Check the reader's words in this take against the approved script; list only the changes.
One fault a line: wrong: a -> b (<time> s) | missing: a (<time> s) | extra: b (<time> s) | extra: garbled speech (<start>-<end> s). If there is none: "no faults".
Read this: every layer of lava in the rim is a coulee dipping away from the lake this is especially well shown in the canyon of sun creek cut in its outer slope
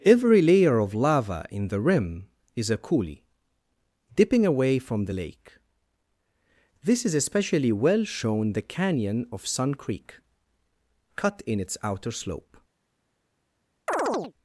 missing: in (8.5 s)